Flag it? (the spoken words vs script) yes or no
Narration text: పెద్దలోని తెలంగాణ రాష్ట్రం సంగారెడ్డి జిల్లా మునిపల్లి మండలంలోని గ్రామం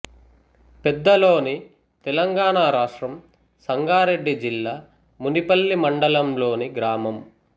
no